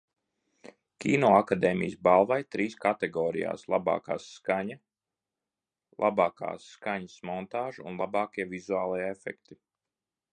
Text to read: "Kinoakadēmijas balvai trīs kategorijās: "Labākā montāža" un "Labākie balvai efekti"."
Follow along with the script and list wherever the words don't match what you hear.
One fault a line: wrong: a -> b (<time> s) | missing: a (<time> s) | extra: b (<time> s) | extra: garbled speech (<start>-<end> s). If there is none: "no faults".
extra: skaņa Labākā skaņas (4.2 s)
wrong: balvai -> vizuālie (8.5 s)